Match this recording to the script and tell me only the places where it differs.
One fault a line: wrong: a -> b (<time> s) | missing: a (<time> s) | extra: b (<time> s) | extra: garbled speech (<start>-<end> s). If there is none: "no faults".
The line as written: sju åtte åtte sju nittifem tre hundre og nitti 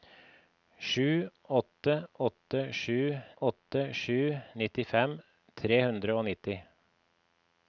extra: åtte sju (3.4 s)